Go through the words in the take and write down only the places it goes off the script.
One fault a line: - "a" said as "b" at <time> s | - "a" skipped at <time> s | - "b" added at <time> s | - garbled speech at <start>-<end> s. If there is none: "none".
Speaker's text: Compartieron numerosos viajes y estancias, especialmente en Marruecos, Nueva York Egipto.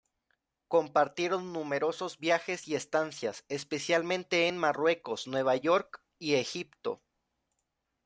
- "y" added at 6.2 s